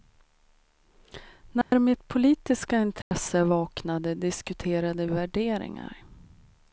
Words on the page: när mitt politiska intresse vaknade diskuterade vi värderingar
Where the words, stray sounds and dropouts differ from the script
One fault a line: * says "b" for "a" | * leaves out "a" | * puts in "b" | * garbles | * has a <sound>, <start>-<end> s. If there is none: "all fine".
* has a dropout, 1.6-1.7 s
* has a dropout, 3.0-3.1 s
* leaves out "vi"